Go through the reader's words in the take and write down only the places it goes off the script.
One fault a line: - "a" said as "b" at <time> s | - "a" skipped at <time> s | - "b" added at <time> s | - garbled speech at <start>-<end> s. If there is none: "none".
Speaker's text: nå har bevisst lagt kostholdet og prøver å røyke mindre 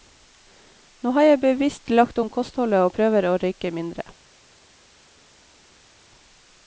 - "jeg" added at 1.3 s
- "om" added at 2.2 s